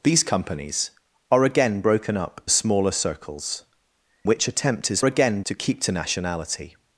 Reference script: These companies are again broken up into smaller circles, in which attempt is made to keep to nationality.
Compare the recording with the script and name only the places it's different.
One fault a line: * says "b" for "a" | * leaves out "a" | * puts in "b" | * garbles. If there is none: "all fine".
* leaves out "into"
* leaves out "in"
* says "again" for "made"